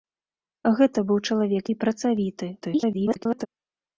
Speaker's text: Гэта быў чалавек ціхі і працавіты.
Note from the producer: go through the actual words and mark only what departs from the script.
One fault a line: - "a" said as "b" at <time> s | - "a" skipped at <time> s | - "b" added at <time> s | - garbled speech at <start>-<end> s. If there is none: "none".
- "ціхі" skipped at 1.7 s
- garbled speech at 2.6-3.5 s